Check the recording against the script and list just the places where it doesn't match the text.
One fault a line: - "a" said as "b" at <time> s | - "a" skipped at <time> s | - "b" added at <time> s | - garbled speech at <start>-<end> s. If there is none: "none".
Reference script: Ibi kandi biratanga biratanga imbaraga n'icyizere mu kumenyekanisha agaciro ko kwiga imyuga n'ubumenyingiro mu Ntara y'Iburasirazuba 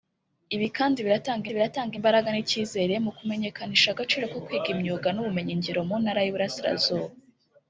none